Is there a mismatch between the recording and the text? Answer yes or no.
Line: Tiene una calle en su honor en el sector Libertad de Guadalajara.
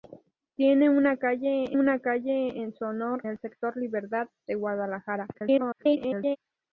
yes